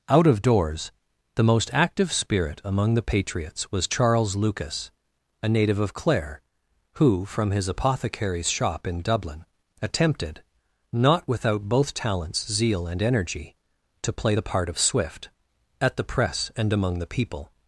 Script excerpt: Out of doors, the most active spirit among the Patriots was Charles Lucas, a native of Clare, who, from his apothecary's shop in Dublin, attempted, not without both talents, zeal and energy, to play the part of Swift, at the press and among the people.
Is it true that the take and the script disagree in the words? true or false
false